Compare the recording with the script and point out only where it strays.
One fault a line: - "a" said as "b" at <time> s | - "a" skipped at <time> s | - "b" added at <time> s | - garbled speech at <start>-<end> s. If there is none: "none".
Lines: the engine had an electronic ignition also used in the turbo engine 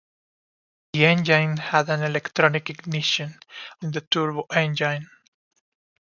- "also used" skipped at 3.4 s